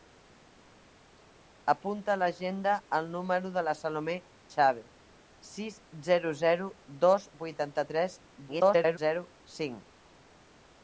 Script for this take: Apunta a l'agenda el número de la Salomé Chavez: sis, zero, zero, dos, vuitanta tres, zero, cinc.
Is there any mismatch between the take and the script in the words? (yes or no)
yes